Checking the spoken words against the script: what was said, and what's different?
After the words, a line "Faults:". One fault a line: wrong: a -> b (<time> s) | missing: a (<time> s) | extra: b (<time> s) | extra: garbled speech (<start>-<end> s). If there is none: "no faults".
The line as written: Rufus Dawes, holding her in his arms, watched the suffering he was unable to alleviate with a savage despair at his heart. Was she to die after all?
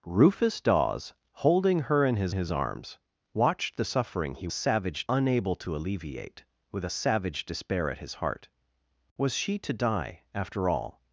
Rufus Dawes, holding her in his his arms, watched the suffering he savage unable to alleviate with a savage despair at his heart. Was she to die after all?
Faults:
extra: his (2.3 s)
wrong: was -> savage (4.5 s)